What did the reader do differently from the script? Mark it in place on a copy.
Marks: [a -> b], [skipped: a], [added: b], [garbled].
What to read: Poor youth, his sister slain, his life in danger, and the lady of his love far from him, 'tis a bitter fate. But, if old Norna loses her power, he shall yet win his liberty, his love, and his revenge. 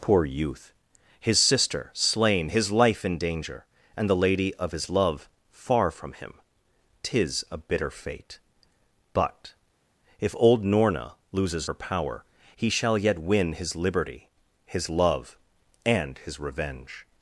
Poor youth, his sister slain, his life in danger, and the lady of his love far from him, 'tis a bitter fate. But, if old Norna loses her power, he shall yet win his liberty, his love, and his revenge.